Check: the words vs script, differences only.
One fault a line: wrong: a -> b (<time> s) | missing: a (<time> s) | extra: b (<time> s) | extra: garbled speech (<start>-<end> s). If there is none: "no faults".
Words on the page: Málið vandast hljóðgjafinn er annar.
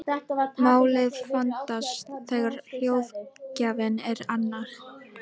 extra: þegar (2.3 s)